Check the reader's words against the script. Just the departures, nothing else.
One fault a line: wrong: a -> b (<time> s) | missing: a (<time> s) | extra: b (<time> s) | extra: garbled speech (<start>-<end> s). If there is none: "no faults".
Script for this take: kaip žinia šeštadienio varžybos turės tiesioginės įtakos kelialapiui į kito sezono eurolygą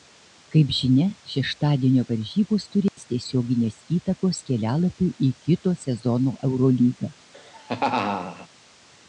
no faults